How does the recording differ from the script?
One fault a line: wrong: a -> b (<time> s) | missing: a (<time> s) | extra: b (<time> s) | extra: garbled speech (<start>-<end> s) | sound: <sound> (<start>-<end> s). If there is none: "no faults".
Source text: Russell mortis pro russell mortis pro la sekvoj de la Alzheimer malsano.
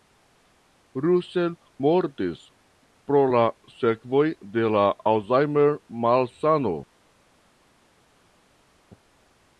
missing: russell mortis pro (3.2 s)